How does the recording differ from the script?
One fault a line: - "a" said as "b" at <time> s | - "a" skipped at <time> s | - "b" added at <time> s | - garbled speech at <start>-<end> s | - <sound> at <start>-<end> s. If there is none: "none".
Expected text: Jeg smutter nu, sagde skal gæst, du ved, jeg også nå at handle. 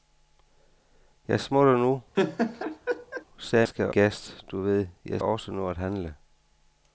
- laugh at 2.1-3.2 s